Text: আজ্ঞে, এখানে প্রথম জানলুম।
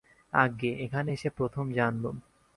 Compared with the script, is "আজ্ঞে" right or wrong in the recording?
right